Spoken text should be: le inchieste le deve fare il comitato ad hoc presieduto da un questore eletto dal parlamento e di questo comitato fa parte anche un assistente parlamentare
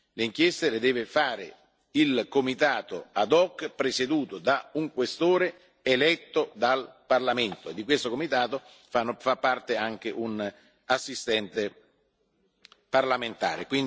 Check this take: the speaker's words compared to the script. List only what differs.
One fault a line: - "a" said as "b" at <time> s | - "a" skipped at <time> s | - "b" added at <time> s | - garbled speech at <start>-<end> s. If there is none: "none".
none